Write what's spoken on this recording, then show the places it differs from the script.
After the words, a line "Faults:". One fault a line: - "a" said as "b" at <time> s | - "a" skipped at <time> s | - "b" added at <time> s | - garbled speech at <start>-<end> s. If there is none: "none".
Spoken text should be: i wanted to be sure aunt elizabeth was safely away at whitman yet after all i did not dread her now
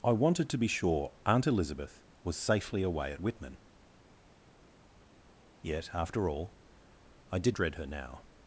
i wanted to be sure aunt elizabeth was safely away at whitman yet after all i did dread her now
Faults:
- "not" skipped at 7.6 s